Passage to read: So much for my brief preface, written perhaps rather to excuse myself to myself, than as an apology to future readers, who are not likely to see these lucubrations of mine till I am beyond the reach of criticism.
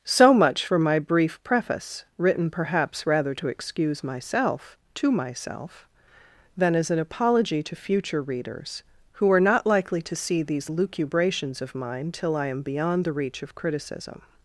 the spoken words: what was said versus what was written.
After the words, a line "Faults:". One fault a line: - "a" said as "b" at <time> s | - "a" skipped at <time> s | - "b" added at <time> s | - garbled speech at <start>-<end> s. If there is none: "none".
So much for my brief preface, written perhaps rather to excuse myself to myself, than as an apology to future readers, who are not likely to see these lucubrations of mine till I am beyond the reach of criticism.
Faults:
none